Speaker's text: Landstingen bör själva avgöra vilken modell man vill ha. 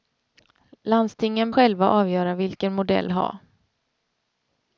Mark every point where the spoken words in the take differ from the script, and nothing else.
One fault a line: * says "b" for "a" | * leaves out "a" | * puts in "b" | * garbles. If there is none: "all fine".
* leaves out "bör"
* leaves out "man vill"